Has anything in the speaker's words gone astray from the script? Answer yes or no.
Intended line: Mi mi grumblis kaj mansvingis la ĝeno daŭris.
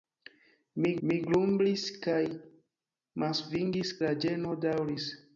no